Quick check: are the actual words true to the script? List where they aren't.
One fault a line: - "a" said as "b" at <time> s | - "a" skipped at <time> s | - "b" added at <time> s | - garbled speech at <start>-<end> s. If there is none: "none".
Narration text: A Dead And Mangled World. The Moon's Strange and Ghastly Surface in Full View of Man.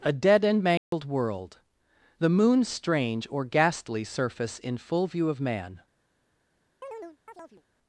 - "and" said as "or" at 3.3 s